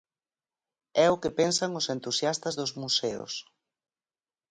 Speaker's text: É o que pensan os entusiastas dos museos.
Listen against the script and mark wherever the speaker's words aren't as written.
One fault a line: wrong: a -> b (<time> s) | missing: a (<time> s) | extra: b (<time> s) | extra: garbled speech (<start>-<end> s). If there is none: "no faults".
no faults